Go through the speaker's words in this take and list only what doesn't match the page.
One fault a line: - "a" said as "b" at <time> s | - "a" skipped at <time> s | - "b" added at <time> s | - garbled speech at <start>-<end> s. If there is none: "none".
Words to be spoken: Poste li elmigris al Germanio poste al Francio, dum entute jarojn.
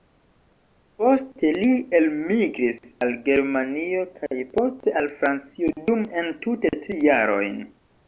- "kaj" added at 4.2 s
- "tri" added at 6.9 s